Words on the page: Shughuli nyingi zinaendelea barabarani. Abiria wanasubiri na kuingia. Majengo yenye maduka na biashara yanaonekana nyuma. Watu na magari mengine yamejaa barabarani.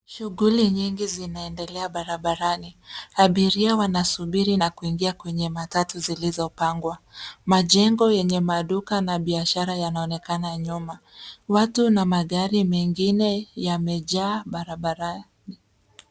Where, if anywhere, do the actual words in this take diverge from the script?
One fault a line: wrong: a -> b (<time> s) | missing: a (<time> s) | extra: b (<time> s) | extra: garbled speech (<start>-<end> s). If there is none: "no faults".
extra: kwenye matatu zilizopangwa (5.1 s)